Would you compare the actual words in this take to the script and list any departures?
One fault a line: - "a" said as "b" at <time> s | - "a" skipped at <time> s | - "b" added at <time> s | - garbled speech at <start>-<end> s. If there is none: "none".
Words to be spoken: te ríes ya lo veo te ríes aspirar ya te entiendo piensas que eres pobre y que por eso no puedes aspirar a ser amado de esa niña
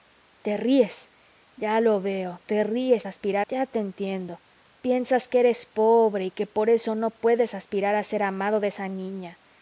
none